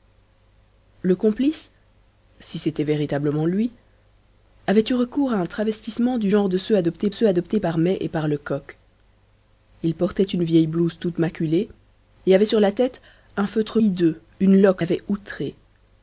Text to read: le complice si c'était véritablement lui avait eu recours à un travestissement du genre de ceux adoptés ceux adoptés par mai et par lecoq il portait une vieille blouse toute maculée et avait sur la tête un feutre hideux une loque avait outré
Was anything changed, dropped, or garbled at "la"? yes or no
no